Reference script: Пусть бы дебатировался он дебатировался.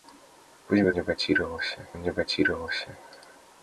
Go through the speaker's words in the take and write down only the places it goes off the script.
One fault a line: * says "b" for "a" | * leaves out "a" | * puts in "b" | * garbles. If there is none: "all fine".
all fine